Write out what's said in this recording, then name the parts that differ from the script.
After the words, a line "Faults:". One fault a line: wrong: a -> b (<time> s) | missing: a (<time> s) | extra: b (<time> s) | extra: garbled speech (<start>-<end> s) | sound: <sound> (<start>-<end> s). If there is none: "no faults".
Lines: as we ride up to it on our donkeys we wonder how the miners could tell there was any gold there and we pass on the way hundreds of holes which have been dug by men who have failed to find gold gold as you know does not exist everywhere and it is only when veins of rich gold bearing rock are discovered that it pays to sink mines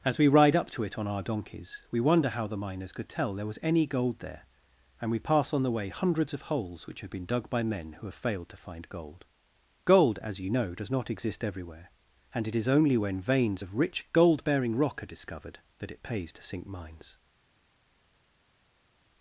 as we ride up to it on our donkeys we wonder how the miners could tell there was any gold there and we pass on the way hundreds of holes which have been dug by men who have failed to find gold gold as you know does not exist everywhere and it is only when veins of rich gold bearing rock are discovered that it pays to sink mines
Faults:
no faults